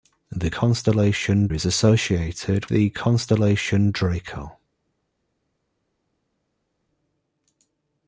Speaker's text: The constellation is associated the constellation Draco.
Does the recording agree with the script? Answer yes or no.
yes